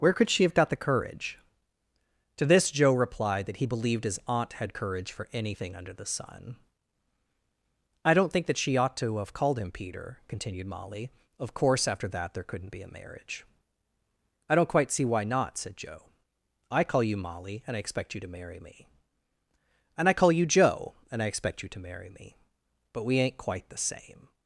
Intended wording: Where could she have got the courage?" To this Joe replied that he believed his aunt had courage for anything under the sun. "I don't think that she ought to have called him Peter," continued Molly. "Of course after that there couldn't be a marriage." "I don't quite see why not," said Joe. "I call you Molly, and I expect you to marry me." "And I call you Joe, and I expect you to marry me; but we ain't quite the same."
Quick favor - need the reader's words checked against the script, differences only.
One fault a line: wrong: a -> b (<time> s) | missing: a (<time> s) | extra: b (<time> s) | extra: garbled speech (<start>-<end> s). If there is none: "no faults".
no faults